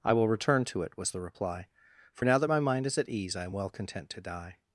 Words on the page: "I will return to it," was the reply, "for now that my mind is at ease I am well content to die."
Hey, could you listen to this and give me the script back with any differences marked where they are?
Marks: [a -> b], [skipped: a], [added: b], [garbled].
"I will return to it," was the reply, "for now that my mind is at ease I am well content to die."